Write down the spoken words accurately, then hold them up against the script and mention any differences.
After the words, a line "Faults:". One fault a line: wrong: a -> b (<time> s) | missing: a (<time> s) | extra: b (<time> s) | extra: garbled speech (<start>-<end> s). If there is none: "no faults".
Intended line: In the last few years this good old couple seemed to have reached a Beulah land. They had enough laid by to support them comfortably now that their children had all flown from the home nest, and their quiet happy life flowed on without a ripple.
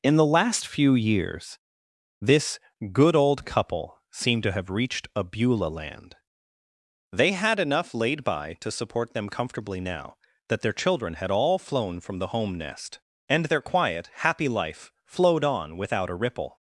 In the last few years this good old couple seemed to have reached a Beulah land. They had enough laid by to support them comfortably now that their children had all flown from the home nest, and their quiet happy life flowed on without a ripple.
Faults:
no faults